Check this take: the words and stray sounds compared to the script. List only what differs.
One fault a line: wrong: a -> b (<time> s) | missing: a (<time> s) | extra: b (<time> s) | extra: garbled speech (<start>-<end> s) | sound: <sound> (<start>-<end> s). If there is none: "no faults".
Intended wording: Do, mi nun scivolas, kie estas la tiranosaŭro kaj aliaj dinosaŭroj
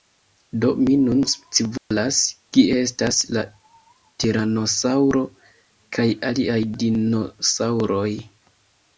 sound: dropout (1.8-1.9 s)